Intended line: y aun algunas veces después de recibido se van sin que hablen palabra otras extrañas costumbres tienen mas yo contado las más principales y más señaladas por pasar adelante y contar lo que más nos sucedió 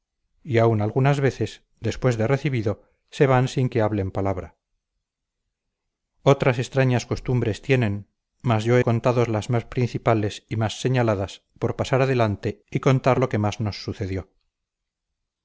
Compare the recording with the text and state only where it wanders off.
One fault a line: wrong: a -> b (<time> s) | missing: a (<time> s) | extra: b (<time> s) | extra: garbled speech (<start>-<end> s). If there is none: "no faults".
no faults